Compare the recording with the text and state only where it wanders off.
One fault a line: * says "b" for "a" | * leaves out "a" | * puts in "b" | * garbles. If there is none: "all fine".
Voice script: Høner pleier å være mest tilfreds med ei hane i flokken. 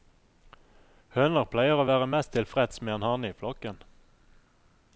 * says "en" for "ei"